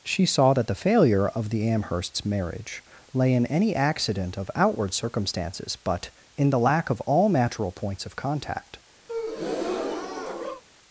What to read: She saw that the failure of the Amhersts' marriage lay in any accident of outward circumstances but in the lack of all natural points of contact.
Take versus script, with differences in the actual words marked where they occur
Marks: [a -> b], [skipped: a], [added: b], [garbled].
She saw that the failure of the Amhersts' marriage lay in any accident of outward circumstances but in the lack of all natural points of contact.